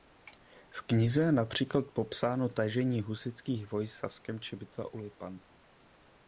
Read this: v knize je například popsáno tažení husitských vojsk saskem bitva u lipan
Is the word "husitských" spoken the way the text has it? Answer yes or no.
yes